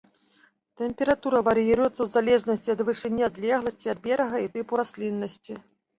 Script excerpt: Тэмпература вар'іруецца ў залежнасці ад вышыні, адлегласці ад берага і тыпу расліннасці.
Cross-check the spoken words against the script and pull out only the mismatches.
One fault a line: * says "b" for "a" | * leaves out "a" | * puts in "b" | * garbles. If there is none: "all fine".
all fine